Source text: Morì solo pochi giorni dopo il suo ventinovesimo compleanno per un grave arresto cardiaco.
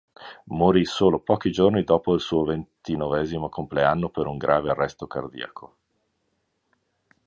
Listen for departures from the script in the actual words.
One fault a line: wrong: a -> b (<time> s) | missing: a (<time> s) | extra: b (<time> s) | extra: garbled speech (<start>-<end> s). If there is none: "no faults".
no faults